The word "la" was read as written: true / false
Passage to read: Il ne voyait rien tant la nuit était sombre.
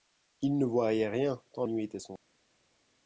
false